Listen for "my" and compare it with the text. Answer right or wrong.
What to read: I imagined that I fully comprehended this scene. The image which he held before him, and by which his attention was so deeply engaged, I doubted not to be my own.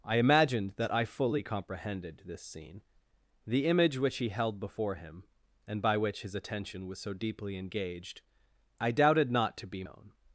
wrong